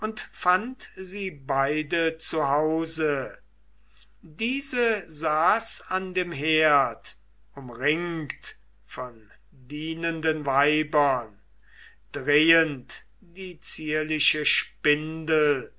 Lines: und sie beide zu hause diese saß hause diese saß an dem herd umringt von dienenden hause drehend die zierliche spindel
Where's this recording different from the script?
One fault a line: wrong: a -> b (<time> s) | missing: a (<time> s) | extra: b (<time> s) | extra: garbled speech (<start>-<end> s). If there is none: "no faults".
extra: fand (0.3 s)
missing: hause diese saß (5.8 s)
wrong: hause -> weibern (10.5 s)